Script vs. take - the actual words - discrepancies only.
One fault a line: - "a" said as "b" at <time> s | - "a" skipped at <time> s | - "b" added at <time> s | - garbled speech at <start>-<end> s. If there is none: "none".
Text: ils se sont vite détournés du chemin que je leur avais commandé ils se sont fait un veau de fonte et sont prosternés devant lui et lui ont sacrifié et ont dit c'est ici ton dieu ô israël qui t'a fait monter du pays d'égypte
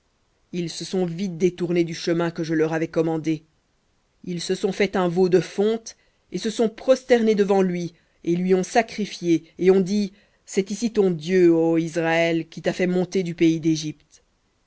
- "se" added at 6.4 s